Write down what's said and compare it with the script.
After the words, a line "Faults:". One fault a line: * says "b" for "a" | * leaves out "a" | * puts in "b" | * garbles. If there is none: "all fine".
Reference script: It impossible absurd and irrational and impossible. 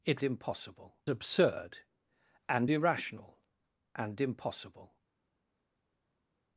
It impossible absurd and irrational and impossible.
Faults:
all fine